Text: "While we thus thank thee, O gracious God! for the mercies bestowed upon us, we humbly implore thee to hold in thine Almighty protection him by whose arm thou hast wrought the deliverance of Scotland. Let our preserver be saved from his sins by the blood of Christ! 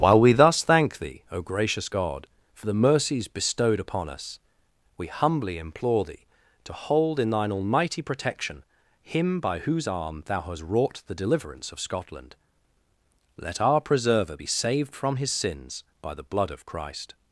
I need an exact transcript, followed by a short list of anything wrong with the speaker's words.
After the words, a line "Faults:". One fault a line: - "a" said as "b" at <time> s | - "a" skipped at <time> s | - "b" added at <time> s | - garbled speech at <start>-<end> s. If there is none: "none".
"While we thus thank thee, O gracious God! for the mercies bestowed upon us, we humbly implore thee to hold in thine Almighty protection him by whose arm thou hast wrought the deliverance of Scotland. Let our preserver be saved from his sins by the blood of Christ!
Faults:
none